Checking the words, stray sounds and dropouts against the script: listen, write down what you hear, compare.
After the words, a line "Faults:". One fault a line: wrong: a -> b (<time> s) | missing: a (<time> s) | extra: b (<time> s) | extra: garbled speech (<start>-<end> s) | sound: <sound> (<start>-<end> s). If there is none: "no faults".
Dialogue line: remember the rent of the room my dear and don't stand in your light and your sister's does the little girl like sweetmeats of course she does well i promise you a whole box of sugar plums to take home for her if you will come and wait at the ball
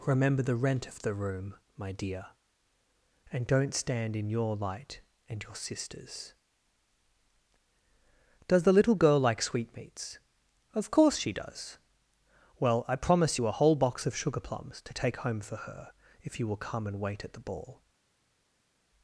remember the rent of the room my dear and don't stand in your light and your sister's does the little girl like sweetmeats of course she does well i promise you a whole box of sugar plums to take home for her if you will come and wait at the ball
Faults:
no faults